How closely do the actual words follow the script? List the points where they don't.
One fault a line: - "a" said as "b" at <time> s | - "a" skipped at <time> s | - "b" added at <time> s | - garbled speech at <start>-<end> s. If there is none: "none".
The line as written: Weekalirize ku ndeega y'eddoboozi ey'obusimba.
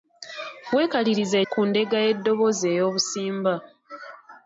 none